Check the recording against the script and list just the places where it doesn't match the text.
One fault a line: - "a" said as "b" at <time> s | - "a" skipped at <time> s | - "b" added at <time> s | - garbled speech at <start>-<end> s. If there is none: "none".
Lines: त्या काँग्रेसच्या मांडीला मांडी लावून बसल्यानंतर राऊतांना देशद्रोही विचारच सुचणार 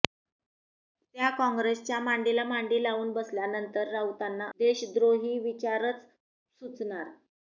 none